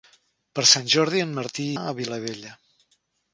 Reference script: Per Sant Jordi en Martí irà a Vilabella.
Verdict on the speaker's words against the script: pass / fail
fail